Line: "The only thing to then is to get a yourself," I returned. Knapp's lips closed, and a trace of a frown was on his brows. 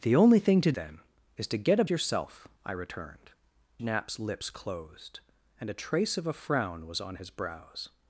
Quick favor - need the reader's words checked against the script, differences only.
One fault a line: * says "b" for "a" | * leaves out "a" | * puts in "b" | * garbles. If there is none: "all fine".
all fine